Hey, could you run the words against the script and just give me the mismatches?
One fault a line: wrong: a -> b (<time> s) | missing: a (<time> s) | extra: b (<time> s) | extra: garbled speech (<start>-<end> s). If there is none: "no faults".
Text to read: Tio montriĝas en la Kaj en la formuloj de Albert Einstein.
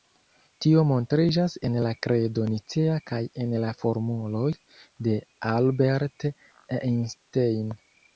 extra: Kredo Nicea (2.1 s)